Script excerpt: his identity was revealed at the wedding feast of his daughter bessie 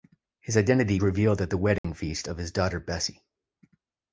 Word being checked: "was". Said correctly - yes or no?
no